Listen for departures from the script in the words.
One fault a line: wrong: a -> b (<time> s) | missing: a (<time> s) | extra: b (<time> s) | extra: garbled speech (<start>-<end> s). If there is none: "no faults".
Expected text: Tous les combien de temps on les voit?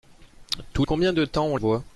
missing: les (0.8 s)
missing: les (1.6 s)